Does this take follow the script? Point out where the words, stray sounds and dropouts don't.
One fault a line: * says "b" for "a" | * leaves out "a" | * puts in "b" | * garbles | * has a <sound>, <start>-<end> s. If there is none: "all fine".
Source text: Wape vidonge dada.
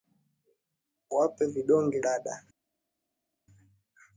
all fine